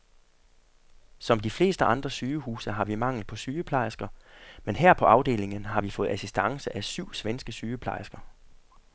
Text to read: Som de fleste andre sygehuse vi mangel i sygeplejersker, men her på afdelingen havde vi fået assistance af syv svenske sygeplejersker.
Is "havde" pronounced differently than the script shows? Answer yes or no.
yes